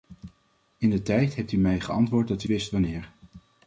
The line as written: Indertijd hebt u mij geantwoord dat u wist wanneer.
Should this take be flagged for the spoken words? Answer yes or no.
no